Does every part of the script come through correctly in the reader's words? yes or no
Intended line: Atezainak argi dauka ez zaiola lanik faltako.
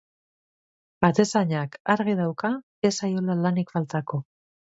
yes